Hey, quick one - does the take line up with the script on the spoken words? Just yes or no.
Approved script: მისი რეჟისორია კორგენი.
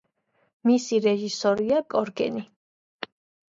yes